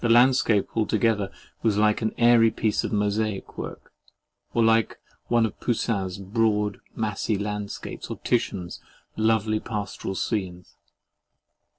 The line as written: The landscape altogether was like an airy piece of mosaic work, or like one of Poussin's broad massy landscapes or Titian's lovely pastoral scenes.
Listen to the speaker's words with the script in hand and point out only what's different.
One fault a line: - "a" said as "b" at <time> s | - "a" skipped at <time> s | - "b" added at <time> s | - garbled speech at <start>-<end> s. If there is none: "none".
none